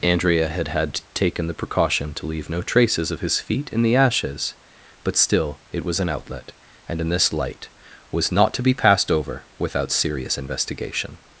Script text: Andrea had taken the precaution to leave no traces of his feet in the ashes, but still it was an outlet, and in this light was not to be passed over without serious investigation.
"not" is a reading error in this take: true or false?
false